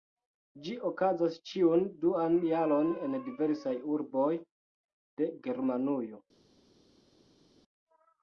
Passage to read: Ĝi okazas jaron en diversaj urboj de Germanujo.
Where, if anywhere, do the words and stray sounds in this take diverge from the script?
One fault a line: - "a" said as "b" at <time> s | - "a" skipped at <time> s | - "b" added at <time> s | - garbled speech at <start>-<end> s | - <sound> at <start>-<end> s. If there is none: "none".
- "ĉiun duan" added at 1.5 s